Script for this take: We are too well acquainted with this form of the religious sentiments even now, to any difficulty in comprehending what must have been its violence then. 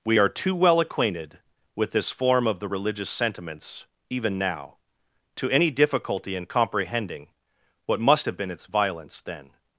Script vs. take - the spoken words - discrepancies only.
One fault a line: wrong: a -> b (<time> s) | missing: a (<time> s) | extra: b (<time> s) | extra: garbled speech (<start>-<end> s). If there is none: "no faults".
no faults